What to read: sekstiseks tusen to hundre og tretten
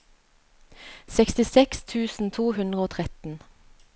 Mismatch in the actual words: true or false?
false